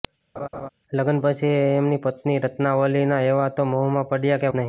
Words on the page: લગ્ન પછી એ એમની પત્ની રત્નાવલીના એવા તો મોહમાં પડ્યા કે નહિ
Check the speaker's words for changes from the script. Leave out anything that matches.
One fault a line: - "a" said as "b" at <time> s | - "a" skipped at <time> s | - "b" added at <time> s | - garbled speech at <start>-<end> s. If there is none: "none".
none